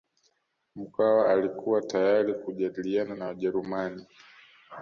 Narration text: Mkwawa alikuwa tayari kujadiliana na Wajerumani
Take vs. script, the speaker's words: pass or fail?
pass